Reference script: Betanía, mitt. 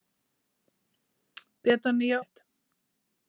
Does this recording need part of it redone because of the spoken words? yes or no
no